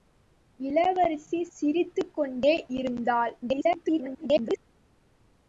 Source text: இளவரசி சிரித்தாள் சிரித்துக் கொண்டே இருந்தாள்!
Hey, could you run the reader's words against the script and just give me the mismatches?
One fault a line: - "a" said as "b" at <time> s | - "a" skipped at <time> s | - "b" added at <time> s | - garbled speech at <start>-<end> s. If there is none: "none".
- "சிரித்தாள்" skipped at 1.4 s
- garbled speech at 3.4-4.6 s